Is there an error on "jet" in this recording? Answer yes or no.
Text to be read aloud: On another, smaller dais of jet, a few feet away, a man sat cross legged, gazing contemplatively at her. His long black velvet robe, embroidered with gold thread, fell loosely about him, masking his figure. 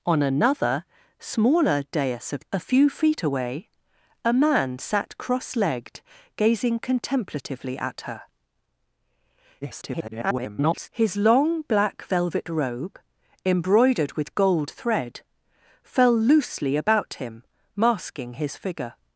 yes